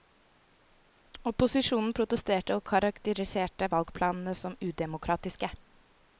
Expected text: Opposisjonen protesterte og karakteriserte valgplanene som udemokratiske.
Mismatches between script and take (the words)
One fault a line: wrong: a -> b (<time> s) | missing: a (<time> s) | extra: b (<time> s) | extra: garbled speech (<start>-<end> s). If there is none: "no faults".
no faults